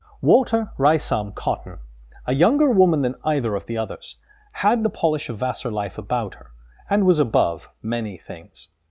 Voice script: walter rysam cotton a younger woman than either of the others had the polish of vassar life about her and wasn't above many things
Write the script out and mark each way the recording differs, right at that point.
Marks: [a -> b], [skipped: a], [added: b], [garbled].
walter rysam cotton a younger woman than either of the others had the polish of vassar life about her and [wasn't -> was] above many things